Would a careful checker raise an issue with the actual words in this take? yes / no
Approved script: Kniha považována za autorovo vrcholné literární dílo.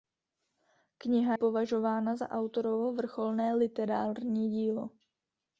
no